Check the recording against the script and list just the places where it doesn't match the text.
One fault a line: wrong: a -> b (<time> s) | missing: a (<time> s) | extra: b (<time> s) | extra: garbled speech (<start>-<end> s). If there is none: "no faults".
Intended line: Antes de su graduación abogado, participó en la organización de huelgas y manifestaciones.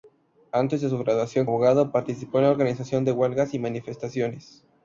no faults